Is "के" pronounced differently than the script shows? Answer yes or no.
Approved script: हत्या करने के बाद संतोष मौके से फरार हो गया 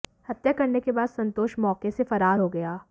no